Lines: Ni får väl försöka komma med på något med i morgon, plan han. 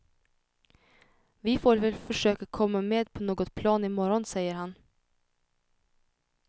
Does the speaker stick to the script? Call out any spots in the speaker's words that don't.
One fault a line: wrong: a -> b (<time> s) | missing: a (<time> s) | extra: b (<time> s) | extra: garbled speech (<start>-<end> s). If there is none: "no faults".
wrong: Ni -> Vi (1.4 s)
wrong: med -> plan (3.5 s)
wrong: plan -> säger (4.2 s)